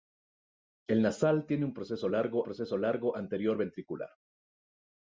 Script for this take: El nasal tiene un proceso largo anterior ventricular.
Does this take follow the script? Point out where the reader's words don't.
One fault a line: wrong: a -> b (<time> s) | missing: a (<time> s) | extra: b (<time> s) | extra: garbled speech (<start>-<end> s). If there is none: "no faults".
extra: proceso largo (2.4 s)